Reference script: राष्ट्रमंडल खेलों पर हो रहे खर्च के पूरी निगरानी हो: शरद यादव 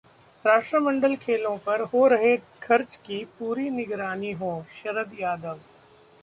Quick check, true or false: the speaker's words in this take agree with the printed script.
false